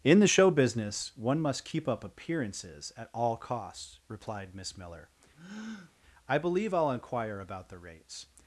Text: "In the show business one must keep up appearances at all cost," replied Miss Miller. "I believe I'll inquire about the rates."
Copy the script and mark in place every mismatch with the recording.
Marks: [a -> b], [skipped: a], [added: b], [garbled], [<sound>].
"In the show business one must keep up appearances at all [cost," -> costs] replied Miss Miller. [breath] "I believe I'll inquire about the rates."